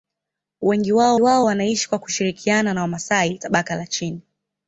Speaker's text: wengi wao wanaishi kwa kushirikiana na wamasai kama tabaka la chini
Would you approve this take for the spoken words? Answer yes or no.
no